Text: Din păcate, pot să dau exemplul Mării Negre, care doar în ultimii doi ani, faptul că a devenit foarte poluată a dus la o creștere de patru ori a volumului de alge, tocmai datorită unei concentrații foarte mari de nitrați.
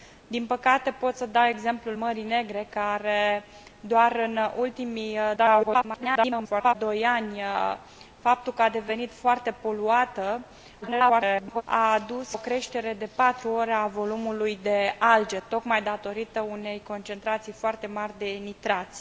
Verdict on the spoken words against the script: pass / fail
fail